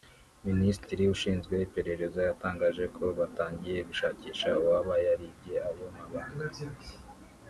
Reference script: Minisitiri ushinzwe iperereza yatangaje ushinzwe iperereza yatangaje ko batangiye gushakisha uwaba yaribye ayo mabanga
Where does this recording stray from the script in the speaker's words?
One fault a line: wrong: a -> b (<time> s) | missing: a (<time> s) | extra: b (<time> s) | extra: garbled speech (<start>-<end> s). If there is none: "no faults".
missing: ushinzwe iperereza yatangaje (2.8 s)